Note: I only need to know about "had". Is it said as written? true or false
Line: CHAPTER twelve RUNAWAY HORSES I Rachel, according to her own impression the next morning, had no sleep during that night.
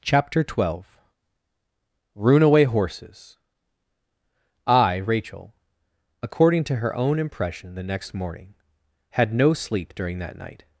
true